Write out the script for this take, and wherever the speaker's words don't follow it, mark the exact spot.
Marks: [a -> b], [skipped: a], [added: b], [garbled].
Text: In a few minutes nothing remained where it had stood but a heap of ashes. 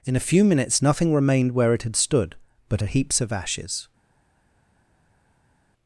In a few minutes nothing remained where it had stood but a [heap -> heaps] of ashes.